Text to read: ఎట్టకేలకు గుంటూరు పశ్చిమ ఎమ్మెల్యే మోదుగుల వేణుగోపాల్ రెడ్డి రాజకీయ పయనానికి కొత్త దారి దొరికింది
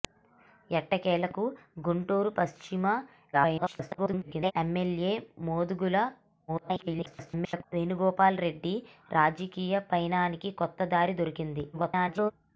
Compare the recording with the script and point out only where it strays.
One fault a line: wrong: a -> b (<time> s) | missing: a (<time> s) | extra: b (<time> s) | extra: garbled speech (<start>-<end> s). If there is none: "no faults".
extra: garbled speech (3.3-4.5 s)
extra: garbled speech (6.5-7.6 s)
extra: garbled speech (11.7-12.3 s)